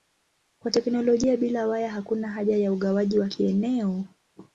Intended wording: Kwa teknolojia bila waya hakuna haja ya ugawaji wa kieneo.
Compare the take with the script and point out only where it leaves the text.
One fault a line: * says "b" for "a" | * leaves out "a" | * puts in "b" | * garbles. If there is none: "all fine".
all fine